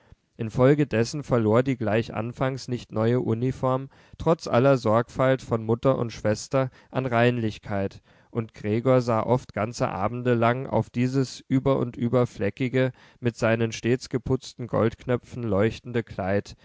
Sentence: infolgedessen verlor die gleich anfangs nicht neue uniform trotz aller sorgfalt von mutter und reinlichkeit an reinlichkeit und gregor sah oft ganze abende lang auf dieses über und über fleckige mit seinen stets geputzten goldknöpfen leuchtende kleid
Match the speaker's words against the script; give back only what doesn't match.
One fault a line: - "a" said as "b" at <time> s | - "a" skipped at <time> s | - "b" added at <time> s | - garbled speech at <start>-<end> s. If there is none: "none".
- "reinlichkeit" said as "schwester" at 6.1 s